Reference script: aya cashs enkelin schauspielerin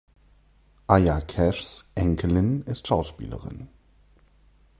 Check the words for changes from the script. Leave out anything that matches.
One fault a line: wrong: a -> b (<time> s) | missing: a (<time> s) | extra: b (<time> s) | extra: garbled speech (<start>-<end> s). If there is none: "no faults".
extra: ist (2.6 s)